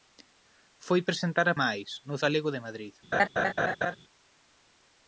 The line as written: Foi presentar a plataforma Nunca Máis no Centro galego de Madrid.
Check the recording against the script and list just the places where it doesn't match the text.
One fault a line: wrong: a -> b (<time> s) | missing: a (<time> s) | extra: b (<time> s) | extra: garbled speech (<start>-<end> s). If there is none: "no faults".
missing: plataforma Nunca (1.6 s)
missing: Centro (2.1 s)